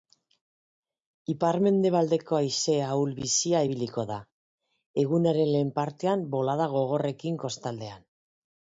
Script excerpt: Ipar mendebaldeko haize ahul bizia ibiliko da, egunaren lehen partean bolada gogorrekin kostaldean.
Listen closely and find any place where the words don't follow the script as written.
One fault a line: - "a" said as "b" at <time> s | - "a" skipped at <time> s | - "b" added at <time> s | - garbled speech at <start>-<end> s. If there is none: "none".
none